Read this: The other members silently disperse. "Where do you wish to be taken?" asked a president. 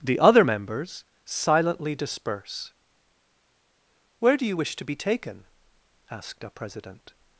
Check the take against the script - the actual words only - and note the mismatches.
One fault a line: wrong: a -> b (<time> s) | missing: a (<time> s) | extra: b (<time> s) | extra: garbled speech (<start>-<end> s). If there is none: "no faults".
no faults